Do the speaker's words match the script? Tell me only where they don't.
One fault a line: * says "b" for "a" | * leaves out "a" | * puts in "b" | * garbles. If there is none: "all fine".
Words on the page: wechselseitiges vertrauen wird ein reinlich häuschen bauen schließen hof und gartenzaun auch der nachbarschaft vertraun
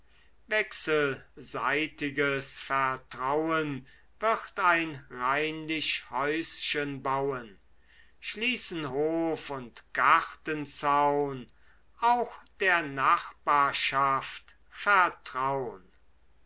all fine